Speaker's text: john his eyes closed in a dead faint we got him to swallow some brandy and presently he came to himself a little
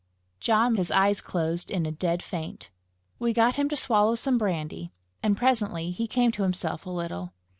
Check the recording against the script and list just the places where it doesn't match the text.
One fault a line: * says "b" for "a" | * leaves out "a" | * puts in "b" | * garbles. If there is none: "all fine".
all fine